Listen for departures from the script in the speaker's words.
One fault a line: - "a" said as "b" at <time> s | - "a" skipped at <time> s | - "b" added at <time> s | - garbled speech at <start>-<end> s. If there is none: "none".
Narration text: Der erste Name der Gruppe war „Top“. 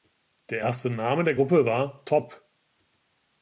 none